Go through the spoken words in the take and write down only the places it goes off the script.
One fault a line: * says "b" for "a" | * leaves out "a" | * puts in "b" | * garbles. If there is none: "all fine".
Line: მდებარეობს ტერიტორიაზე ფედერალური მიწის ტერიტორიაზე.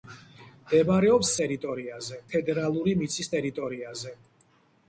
all fine